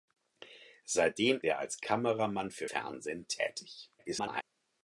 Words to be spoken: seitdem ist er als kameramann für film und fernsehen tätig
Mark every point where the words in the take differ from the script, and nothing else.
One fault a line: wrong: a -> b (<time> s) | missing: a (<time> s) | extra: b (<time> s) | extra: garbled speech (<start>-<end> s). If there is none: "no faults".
missing: ist (1.4 s)
missing: film und (2.7 s)
extra: garbled speech (4.0-4.4 s)